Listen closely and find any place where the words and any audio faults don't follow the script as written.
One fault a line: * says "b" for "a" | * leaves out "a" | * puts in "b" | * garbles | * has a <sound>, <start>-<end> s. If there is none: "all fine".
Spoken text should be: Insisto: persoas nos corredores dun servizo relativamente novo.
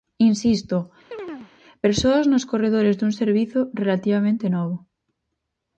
* has a chirp, 1.1-1.5 s